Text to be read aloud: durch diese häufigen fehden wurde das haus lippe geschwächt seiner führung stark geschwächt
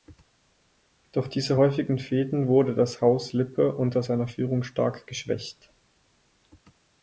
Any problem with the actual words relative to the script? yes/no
yes